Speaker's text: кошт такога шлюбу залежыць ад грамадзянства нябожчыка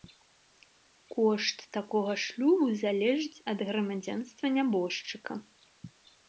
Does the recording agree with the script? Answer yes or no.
yes